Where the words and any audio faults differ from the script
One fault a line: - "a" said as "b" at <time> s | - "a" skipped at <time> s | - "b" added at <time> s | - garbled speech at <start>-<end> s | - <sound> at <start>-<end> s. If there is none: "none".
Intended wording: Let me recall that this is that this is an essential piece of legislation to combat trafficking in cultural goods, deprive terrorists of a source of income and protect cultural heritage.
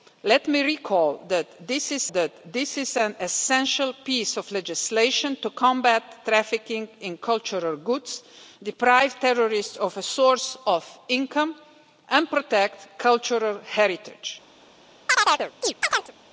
- chirp at 15.1-16.1 s